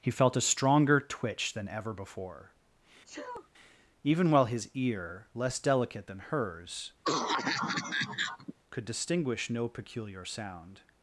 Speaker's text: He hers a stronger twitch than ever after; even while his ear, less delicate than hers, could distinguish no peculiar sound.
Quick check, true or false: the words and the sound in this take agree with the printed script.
false